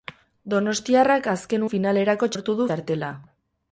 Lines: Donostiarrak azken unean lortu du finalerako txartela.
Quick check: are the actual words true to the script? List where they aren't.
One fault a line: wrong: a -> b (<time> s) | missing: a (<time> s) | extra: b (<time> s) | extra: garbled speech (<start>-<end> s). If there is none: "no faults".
wrong: unean -> finalerako (1.7 s)
missing: finalerako (2.7 s)